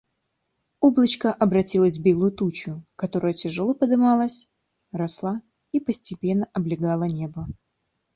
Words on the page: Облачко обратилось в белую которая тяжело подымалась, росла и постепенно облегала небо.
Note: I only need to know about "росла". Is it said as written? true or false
true